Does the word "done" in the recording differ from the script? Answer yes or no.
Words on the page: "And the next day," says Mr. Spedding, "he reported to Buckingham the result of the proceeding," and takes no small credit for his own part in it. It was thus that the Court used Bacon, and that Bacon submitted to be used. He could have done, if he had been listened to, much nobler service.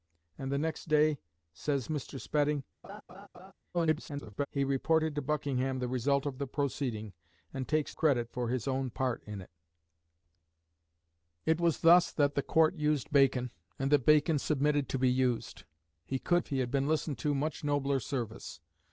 yes